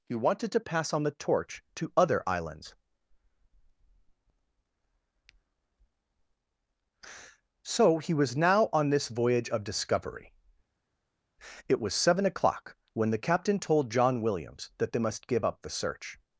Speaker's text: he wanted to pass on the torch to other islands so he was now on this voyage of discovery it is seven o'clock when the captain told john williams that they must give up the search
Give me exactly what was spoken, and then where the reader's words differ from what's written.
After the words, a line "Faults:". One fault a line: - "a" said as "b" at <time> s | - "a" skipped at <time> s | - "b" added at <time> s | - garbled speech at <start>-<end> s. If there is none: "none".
he wanted to pass on the torch to other islands so he was now on this voyage of discovery it was seven o'clock when the captain told john williams that they must give up the search
Faults:
- "is" said as "was" at 11.8 s